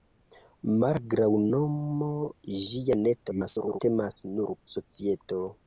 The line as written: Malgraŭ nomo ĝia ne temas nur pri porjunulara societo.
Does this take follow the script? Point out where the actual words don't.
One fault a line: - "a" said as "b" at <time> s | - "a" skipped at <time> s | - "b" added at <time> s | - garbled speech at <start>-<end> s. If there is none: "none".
- garbled speech at 3.2-3.8 s
- "pri porjunulara" skipped at 4.5 s